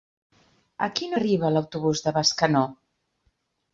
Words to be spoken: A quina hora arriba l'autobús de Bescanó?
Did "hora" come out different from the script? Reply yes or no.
yes